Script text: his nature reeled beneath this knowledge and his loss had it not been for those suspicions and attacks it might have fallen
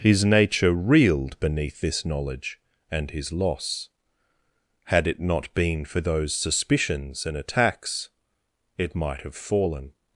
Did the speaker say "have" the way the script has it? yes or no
yes